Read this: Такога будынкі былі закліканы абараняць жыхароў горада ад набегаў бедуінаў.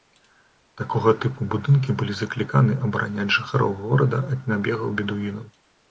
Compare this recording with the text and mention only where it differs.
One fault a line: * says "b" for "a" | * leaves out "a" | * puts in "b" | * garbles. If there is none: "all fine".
* puts in "тыпу"